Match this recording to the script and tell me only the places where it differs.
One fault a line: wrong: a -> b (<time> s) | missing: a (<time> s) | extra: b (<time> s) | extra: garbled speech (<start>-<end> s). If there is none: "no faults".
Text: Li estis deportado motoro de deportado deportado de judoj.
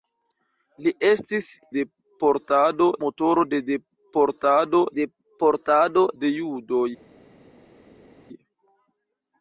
no faults